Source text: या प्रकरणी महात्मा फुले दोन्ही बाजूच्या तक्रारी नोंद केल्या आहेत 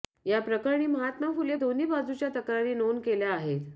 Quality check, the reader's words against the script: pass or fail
pass